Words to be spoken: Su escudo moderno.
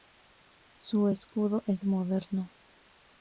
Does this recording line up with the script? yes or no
no